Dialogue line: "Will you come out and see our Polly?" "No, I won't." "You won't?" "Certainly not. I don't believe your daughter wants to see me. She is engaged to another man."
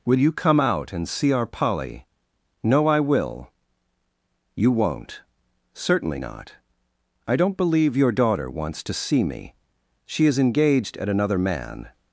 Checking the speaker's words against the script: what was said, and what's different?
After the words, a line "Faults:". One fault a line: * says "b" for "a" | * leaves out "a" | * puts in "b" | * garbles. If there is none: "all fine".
"Will you come out and see our Polly?" "No, I will." "You won't?" "Certainly not. I don't believe your daughter wants to see me. She is engaged at another man."
Faults:
* says "will" for "won't"
* says "at" for "to"